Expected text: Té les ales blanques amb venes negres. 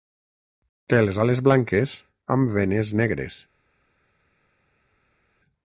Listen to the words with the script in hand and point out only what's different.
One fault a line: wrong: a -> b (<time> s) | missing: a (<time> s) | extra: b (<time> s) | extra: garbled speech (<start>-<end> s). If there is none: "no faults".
no faults